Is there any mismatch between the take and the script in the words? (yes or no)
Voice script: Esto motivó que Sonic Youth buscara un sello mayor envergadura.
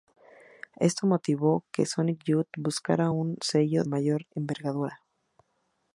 no